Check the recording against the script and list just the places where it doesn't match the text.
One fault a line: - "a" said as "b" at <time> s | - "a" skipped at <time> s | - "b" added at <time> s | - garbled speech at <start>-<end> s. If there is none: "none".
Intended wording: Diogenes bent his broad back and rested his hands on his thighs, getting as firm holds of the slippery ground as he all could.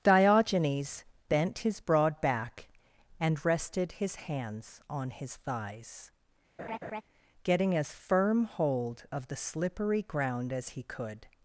- "holds" said as "hold" at 8.4 s
- "all" skipped at 10.8 s